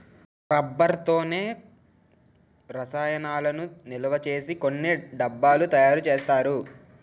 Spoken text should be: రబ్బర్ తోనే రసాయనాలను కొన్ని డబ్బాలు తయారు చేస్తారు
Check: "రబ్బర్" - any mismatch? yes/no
no